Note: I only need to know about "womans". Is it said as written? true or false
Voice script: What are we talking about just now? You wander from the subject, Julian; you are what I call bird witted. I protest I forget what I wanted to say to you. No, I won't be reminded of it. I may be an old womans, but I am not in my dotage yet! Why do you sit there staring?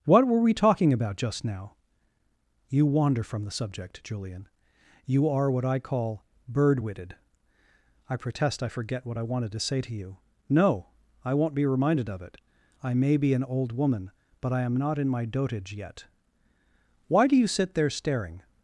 false